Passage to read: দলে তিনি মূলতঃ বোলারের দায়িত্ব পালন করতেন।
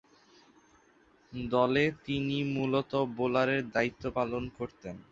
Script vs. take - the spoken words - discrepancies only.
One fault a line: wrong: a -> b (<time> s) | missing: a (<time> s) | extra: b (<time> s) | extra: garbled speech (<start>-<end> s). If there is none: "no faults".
no faults